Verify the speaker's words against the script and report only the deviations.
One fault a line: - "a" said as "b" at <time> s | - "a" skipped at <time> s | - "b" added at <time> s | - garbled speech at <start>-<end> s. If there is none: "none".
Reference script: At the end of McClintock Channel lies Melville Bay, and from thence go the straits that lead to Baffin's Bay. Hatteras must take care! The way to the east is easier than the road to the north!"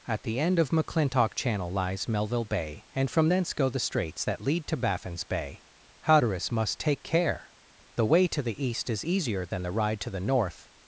- "road" said as "ride" at 9.7 s